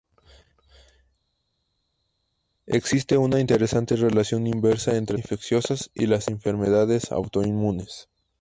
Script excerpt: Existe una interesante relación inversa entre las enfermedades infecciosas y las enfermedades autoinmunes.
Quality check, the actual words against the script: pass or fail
fail